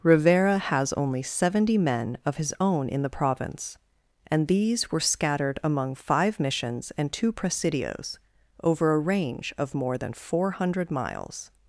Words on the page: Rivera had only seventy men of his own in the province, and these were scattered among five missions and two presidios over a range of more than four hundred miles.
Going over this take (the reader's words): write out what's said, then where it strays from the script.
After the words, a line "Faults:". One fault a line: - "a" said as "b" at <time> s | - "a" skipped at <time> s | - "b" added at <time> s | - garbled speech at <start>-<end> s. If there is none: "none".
Rivera has only seventy men of his own in the province, and these were scattered among five missions and two presidios over a range of more than four hundred miles.
Faults:
- "had" said as "has" at 0.6 s